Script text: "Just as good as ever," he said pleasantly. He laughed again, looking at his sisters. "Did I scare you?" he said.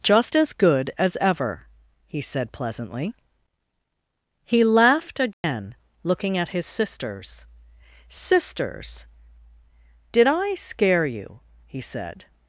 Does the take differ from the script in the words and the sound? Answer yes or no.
yes